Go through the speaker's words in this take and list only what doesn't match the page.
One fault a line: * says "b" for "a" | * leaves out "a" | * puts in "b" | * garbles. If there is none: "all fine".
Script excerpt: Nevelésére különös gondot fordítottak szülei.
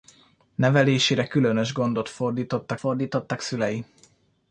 * puts in "fordítottak"